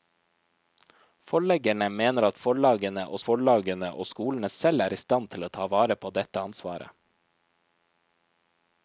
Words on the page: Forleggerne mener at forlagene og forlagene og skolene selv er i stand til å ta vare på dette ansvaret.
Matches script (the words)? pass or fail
pass